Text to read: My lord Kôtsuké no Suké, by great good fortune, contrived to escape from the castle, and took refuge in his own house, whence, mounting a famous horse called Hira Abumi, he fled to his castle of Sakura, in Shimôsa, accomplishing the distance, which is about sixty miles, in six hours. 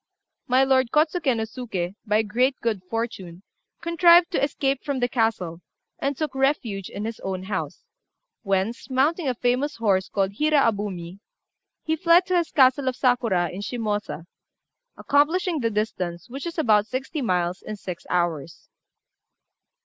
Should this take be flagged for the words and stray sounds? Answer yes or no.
no